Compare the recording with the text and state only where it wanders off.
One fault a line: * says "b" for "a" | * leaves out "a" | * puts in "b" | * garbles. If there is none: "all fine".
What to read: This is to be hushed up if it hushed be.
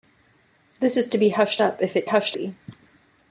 all fine